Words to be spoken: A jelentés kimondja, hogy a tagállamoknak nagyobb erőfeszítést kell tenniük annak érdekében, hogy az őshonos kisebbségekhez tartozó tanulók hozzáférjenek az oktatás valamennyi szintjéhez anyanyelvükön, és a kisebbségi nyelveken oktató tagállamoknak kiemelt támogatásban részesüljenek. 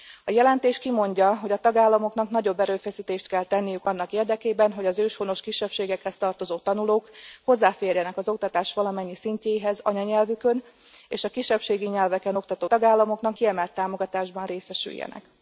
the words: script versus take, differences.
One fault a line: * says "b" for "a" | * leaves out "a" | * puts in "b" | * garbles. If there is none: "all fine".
all fine